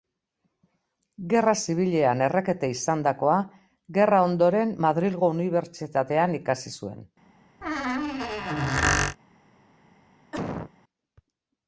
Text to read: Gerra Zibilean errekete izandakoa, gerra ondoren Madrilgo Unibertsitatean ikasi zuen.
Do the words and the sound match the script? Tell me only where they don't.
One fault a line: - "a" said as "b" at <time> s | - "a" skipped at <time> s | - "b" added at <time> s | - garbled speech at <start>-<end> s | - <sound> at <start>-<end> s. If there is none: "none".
- squeak at 7.6-9.2 s
- cough at 10.3-10.7 s